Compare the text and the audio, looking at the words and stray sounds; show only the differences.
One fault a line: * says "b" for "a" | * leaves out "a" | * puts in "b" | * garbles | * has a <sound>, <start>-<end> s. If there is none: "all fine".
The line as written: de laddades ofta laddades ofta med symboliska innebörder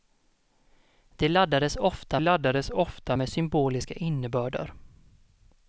all fine